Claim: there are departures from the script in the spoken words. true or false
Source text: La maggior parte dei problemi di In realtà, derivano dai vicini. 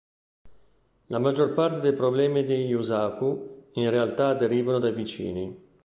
true